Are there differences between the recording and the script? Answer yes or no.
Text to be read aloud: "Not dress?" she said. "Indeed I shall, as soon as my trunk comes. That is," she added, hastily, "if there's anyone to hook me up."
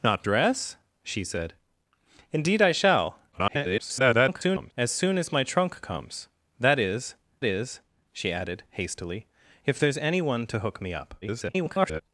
yes